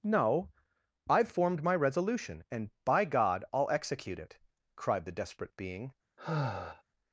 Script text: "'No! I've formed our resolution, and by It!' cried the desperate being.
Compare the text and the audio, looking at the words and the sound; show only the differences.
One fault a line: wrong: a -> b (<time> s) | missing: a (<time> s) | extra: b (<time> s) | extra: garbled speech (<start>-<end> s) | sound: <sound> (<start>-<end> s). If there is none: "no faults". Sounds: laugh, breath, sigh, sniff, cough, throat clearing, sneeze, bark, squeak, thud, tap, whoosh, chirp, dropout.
wrong: our -> my (1.6 s)
extra: God I'll execute (3.0 s)
sound: sigh (6.2-6.8 s)